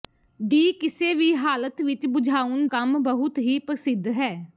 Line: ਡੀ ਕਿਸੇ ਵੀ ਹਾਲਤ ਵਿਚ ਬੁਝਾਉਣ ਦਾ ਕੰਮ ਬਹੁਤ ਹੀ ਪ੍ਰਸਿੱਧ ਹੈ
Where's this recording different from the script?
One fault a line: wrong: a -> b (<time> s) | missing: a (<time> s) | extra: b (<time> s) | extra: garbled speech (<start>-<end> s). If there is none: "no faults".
missing: ਦਾ (2.6 s)